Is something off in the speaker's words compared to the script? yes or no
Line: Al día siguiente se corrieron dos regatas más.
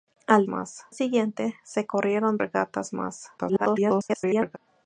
yes